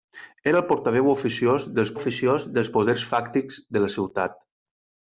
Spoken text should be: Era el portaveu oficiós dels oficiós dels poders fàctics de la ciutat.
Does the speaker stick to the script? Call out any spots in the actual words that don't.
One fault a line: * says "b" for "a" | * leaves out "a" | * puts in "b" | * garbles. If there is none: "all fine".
all fine